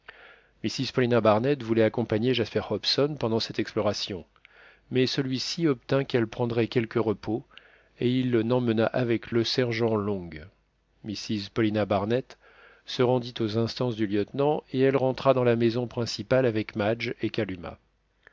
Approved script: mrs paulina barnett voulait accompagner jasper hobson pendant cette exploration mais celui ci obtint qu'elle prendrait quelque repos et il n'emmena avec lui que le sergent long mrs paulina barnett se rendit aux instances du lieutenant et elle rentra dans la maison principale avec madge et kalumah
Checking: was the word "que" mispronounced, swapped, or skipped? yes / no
yes